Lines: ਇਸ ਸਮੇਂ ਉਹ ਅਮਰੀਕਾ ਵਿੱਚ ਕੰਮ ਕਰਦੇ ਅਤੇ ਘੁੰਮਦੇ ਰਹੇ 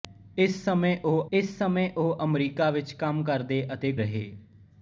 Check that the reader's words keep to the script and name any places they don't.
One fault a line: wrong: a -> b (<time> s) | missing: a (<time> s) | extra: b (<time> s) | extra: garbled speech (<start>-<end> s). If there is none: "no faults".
extra: ਇਸ ਸਮੇਂ ਉਹ (1.3 s)
missing: ਘੁੰਮਦੇ (3.9 s)